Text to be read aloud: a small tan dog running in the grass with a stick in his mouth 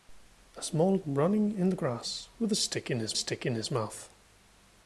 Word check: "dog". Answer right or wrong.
wrong